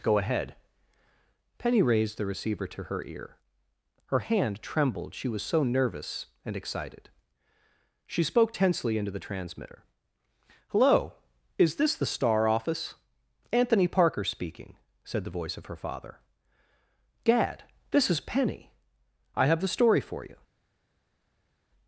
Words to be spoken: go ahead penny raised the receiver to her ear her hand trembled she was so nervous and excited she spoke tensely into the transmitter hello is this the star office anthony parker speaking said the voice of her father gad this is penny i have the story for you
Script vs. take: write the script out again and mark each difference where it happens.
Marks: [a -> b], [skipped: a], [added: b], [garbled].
go ahead penny raised the receiver to her ear her hand trembled she was so nervous and excited she spoke tensely into the transmitter hello is this the star office anthony parker speaking said the voice of her father gad this is penny i have the story for you